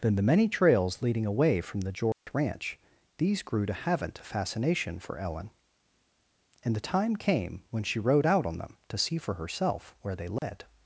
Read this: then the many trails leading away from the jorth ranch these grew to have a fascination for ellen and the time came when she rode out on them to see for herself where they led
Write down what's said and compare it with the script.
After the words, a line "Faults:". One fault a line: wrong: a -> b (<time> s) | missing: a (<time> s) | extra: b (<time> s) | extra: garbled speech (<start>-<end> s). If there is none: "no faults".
then the many trails leading away from the jorth ranch these grew to haven't a fascination for ellen and the time came when she rode out on them to see for herself where they led
Faults:
wrong: have -> haven't (3.7 s)